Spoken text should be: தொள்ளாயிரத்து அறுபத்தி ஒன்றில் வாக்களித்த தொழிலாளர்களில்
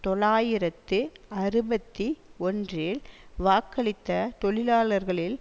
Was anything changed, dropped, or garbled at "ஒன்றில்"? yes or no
no